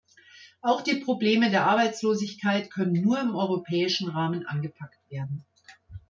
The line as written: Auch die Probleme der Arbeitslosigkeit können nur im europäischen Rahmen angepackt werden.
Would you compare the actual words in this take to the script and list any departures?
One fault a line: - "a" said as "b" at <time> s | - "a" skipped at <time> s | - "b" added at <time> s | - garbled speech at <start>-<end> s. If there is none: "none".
none